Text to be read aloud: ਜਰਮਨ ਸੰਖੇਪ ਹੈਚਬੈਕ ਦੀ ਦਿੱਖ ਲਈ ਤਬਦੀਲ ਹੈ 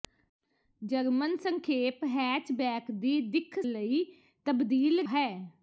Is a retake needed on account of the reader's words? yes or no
no